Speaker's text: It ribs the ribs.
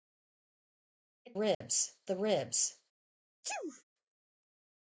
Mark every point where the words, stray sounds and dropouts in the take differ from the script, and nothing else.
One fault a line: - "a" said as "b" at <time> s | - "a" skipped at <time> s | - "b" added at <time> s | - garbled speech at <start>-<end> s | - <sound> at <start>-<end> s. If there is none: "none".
- dropout at 1.5-1.6 s
- sneeze at 3.4-3.8 s